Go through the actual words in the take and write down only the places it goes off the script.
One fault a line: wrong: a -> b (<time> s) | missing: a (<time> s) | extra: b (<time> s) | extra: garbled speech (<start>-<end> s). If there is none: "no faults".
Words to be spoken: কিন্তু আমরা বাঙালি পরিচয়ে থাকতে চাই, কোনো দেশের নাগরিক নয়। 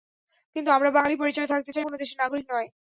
no faults